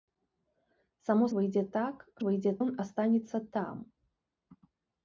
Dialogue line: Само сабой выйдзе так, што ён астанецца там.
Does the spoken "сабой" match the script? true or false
false